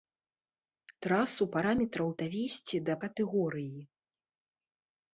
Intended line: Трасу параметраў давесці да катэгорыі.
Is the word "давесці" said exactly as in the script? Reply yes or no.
yes